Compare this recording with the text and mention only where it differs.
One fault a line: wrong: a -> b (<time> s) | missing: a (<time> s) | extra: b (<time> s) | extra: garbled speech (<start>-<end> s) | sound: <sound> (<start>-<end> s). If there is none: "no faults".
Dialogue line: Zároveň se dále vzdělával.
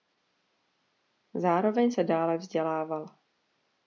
no faults